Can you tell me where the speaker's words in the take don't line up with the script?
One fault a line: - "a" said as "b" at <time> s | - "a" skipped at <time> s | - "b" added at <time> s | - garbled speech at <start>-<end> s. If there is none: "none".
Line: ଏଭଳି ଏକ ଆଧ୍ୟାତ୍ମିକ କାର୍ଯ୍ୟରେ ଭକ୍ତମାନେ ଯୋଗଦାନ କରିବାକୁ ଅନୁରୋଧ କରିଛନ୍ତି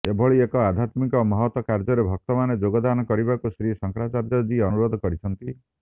- "ମହତ୍" added at 1.2 s
- "ଶ୍ରୀ ଶଙ୍କରାଚାର୍ଯ୍ୟଜୀ" added at 3.5 s